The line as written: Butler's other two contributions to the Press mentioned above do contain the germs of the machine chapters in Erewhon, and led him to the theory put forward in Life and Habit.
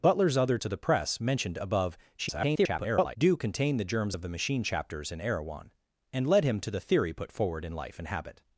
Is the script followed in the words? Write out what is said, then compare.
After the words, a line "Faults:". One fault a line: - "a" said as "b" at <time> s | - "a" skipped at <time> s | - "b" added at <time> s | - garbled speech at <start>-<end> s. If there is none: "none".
Butler's other to the Press mentioned above [garbled] do contain the germs of the machine chapters in Erewhon, and led him to the theory put forward in Life and Habit.
Faults:
- "two contributions" skipped at 0.6 s
- garbled speech at 2.2-3.2 s